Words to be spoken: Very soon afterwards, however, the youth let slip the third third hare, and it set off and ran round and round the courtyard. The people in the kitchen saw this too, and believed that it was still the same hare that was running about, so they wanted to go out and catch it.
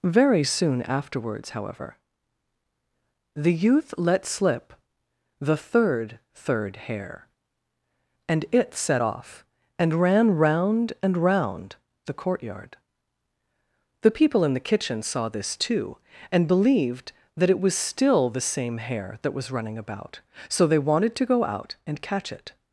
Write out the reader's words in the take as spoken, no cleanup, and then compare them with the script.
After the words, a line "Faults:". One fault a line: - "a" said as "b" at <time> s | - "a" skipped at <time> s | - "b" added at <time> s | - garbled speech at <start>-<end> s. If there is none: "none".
Very soon afterwards, however, the youth let slip the third third hare, and it set off and ran round and round the courtyard. The people in the kitchen saw this too, and believed that it was still the same hare that was running about, so they wanted to go out and catch it.
Faults:
none